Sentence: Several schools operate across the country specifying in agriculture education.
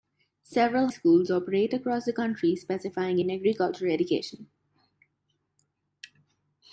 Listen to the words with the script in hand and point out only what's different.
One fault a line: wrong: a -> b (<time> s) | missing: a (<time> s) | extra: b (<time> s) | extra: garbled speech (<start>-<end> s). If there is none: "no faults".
no faults